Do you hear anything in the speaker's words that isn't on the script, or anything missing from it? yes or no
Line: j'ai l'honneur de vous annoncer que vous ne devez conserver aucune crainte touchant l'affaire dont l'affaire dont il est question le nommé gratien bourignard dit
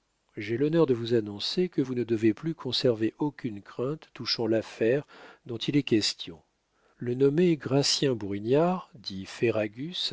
yes